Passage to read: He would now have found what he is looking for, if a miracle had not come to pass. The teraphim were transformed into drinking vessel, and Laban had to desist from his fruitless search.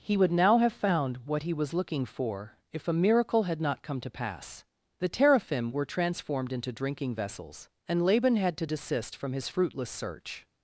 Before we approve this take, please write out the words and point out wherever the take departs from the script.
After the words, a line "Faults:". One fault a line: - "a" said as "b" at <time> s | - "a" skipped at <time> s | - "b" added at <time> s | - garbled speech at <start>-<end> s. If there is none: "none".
He would now have found what he was looking for, if a miracle had not come to pass. The teraphim were transformed into drinking vessels, and Laban had to desist from his fruitless search.
Faults:
- "is" said as "was" at 1.5 s
- "vessel" said as "vessels" at 7.1 s